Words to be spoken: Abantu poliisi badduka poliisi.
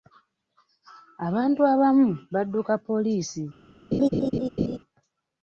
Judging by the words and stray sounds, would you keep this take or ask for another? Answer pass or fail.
fail